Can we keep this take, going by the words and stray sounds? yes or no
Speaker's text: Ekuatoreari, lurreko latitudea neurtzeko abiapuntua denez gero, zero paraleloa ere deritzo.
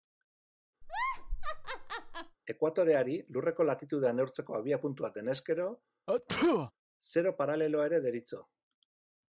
no